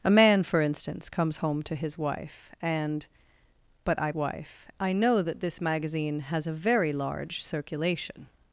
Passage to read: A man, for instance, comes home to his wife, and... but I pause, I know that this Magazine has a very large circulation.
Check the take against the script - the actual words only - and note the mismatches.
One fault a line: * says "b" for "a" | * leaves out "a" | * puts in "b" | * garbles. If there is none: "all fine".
* says "wife" for "pause"